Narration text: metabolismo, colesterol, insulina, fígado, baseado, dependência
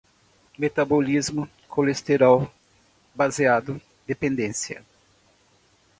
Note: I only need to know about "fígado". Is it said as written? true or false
false